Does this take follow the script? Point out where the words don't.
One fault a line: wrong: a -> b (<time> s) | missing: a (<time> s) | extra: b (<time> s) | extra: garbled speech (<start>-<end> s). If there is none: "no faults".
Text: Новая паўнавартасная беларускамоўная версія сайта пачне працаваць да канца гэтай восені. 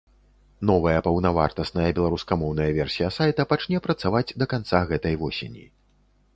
no faults